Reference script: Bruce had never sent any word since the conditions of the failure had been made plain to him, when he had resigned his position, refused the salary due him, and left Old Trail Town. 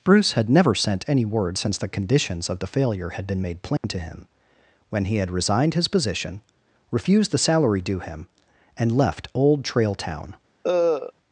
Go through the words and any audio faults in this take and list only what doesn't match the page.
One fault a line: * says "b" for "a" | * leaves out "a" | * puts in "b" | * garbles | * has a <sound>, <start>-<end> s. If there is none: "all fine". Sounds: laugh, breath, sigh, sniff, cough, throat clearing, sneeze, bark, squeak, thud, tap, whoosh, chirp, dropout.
* has a dropout, 3.8-3.8 s
* has a cough, 10.6-11.1 s